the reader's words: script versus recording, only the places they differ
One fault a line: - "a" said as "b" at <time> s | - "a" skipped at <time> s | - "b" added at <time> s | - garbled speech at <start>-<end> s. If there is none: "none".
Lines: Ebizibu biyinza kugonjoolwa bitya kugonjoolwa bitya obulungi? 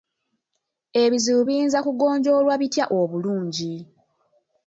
- "kugonjoolwa bitya" skipped at 2.9 s